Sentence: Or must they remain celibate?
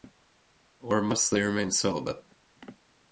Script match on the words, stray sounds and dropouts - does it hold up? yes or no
yes